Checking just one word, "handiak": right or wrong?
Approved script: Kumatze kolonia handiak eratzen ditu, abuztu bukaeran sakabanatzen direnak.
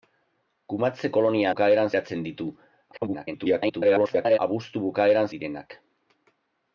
wrong